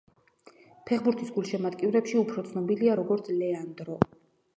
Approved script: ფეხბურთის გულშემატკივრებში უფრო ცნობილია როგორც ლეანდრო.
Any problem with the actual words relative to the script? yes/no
no